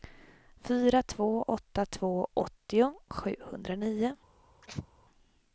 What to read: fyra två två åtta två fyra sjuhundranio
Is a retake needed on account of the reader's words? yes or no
yes